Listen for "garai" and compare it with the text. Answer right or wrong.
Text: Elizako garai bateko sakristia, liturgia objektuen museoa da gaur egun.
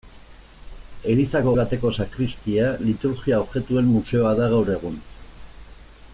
wrong